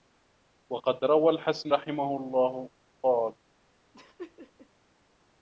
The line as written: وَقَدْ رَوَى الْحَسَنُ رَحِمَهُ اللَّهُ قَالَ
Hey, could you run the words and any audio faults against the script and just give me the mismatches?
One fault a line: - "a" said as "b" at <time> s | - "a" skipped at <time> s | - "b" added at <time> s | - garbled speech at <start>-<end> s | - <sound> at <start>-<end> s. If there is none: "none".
- laugh at 3.9-4.7 s